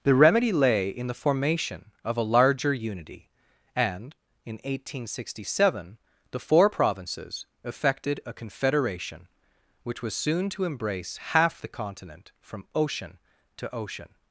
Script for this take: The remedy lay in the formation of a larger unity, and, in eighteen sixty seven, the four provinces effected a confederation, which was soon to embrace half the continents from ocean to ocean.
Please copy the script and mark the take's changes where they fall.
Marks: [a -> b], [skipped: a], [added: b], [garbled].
The remedy lay in the formation of a larger unity, and, in eighteen sixty seven, the four provinces effected a confederation, which was soon to embrace half the [continents -> continent] from ocean to ocean.